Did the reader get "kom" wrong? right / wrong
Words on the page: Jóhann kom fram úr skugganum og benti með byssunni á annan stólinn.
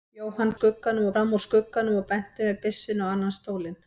wrong